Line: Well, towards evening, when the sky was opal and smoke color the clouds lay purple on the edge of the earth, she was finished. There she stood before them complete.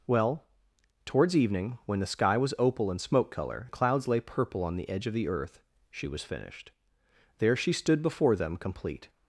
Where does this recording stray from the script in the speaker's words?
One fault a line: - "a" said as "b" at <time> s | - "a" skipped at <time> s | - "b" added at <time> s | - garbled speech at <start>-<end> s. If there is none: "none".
none